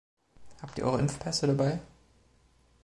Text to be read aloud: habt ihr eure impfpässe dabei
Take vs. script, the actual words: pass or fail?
pass